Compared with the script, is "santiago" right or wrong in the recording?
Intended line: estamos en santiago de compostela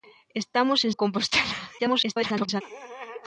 wrong